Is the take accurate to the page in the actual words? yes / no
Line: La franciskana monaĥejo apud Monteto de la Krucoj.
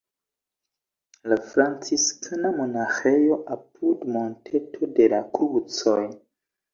yes